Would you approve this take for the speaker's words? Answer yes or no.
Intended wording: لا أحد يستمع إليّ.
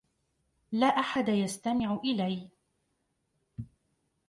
yes